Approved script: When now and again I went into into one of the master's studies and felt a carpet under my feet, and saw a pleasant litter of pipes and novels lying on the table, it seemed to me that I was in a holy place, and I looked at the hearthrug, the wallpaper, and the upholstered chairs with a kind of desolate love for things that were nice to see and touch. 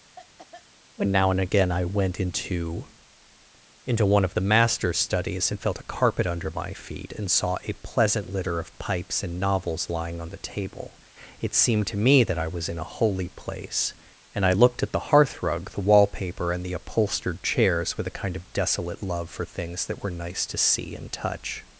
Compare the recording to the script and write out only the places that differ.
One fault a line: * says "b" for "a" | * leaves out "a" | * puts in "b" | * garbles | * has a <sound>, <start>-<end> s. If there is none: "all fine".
* has a cough, 0.2-0.7 s